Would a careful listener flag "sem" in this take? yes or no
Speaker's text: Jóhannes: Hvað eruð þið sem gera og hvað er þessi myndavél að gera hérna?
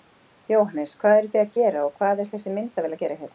yes